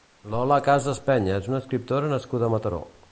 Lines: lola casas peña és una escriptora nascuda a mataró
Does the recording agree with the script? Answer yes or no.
yes